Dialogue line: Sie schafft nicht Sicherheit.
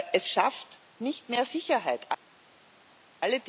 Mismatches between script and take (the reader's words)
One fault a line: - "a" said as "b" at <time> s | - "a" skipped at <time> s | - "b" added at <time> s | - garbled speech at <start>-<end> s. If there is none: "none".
- "Sie" said as "Es" at 0.1 s
- "mehr" added at 1.3 s